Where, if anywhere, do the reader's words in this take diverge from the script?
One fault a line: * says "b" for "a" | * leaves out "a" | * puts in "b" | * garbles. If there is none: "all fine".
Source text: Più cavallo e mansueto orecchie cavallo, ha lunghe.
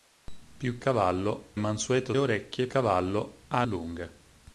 all fine